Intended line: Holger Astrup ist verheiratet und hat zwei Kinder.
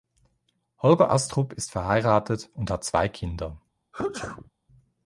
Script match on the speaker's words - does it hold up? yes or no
yes